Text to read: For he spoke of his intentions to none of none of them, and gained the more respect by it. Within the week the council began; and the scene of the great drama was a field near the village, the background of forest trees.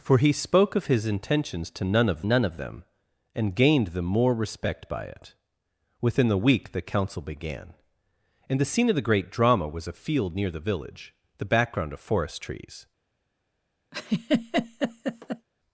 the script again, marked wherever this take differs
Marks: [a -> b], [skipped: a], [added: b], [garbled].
For he spoke of his intentions to none of none of them, and gained the more respect by it. Within the week the council began; and the scene of the great drama was a field near the village, the background of forest trees.